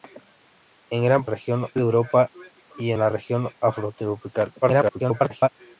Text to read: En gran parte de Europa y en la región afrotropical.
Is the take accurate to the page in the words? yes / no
no